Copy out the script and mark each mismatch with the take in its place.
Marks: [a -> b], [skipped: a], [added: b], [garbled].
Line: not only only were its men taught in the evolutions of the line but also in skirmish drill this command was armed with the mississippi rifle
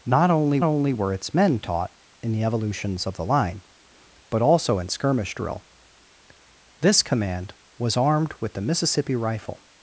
not only only were its men taught in the evolutions of the line but also in skirmish drill this command was armed with the mississippi rifle